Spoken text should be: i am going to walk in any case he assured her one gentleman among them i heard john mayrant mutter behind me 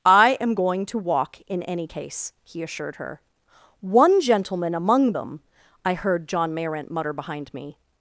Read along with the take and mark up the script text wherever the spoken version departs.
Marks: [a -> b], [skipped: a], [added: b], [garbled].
i am going to walk in any case he assured her one gentleman among them i heard john mayrant mutter behind me